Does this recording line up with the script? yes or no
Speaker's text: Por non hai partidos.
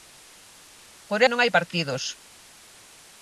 yes